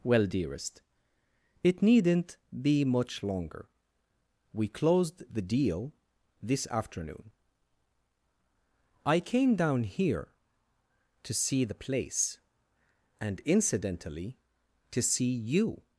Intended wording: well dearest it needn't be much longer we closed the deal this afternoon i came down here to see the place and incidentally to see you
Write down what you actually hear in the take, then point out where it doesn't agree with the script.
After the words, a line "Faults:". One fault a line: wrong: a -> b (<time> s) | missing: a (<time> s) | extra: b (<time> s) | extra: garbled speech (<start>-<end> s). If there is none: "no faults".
well dearest it needn't be much longer we closed the deal this afternoon i came down here to see the place and incidentally to see you
Faults:
no faults